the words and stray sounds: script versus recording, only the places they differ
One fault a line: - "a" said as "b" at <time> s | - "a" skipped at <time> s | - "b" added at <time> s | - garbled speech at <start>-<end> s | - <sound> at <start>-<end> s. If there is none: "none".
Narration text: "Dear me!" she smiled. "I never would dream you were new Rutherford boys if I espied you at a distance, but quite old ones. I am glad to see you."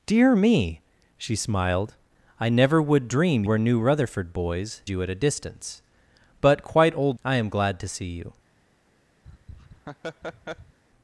- "you" skipped at 3.4 s
- "if I espied" skipped at 4.8 s
- "ones" skipped at 7.2 s
- laugh at 9.2-10.8 s